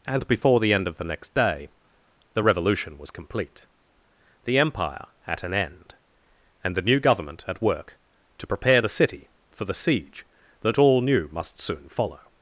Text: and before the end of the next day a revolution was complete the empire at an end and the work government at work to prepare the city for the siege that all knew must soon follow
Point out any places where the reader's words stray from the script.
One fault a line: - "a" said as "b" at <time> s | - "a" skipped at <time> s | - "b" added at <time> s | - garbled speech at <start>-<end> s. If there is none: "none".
- "a" said as "the" at 2.3 s
- "work" said as "new" at 6.8 s